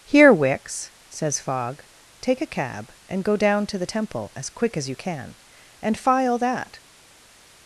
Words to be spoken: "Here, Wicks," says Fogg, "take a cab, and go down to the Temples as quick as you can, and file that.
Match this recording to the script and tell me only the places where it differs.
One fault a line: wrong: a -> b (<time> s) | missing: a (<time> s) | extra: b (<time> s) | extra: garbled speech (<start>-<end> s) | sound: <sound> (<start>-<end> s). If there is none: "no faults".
wrong: Temples -> Temple (3.8 s)